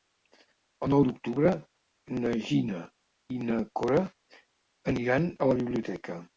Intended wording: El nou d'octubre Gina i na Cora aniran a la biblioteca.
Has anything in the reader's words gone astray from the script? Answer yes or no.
yes